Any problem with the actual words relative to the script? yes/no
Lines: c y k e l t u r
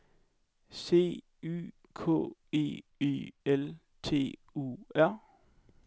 yes